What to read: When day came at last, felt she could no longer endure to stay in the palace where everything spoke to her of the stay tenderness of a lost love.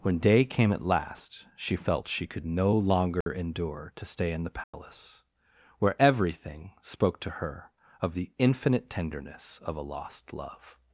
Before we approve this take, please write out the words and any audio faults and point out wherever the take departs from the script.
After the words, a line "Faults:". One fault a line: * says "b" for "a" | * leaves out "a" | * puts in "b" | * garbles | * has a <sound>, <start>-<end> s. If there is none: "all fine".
When day came at last, she felt she could no longer endure to stay in the palace where everything spoke to her of the infinite tenderness of a lost love.
Faults:
* puts in "she"
* has a dropout, 3.2-3.3 s
* has a dropout, 4.6-4.7 s
* says "infinite" for "stay"